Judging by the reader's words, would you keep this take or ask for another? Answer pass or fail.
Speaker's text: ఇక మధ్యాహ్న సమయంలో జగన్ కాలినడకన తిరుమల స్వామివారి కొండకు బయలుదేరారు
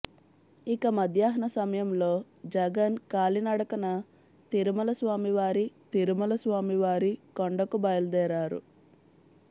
fail